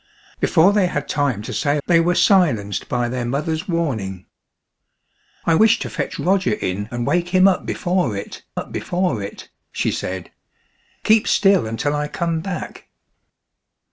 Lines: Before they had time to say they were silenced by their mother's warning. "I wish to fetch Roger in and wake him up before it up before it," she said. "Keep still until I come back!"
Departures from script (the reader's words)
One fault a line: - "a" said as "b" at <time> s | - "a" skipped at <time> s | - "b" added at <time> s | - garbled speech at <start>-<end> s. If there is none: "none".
none